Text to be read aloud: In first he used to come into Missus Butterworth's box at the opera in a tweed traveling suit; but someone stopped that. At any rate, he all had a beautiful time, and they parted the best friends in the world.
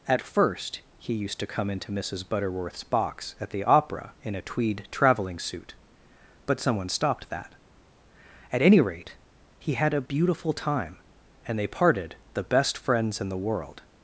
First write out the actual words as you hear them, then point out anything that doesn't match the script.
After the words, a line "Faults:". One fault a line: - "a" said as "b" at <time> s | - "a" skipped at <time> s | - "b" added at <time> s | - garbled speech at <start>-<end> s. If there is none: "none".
At first he used to come into Missus Butterworth's box at the opera in a tweed traveling suit; but someone stopped that. At any rate, he had a beautiful time, and they parted the best friends in the world.
Faults:
- "In" said as "At" at 0.1 s
- "all" skipped at 9.7 s